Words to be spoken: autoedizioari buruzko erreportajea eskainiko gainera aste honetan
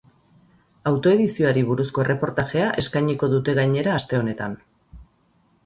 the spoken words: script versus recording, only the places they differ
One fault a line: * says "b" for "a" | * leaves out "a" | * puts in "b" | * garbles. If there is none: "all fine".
* puts in "dute"